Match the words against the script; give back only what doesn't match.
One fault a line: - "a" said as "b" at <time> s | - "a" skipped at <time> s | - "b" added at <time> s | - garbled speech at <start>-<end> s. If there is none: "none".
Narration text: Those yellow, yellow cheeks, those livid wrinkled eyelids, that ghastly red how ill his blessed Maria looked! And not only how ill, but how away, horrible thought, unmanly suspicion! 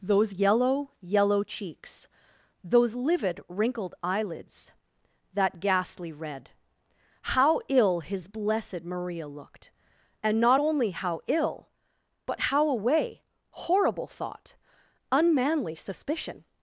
none